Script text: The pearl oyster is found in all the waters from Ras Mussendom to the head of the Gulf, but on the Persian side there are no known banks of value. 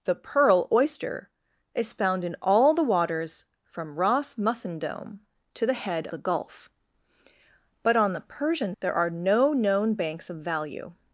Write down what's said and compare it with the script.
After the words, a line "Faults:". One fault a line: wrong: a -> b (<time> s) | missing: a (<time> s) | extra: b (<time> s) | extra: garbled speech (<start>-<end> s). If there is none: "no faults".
The pearl oyster is found in all the waters from Ras Mussendom to the head the Gulf, but on the Persian there are no known banks of value.
Faults:
missing: of (6.1 s)
missing: side (8.7 s)